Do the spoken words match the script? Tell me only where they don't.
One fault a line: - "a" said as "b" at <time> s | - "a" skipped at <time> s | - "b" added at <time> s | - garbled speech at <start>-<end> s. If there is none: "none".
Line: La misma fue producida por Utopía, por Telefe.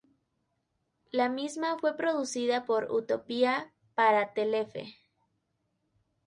- "por" said as "para" at 3.9 s